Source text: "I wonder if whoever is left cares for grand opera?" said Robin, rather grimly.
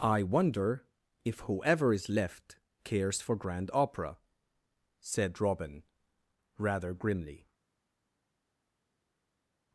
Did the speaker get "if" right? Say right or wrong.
right